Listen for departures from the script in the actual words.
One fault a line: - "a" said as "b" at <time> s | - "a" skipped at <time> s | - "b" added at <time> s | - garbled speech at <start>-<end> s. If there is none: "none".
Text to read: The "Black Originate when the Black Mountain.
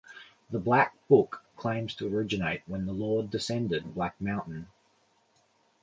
- "Book claims to" added at 1.1 s
- "Lord descended" added at 2.9 s